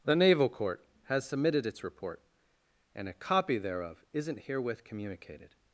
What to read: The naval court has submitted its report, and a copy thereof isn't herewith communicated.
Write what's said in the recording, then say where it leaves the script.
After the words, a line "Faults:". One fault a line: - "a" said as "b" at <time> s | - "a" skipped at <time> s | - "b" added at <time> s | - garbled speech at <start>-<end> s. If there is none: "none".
The naval court has submitted its report, and a copy thereof isn't herewith communicated.
Faults:
none